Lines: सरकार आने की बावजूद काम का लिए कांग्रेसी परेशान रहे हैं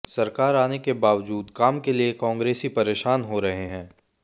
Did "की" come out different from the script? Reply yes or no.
yes